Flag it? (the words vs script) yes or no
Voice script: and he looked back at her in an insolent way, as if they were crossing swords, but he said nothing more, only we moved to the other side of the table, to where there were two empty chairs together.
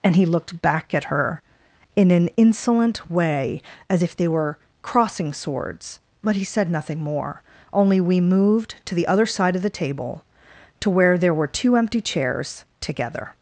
no